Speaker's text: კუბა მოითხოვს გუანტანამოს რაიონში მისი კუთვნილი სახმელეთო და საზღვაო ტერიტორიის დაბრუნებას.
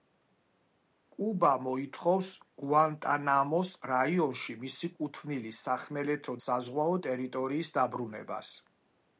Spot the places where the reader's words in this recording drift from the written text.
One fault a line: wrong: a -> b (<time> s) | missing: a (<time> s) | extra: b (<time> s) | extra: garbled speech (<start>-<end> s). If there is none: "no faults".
missing: და (6.4 s)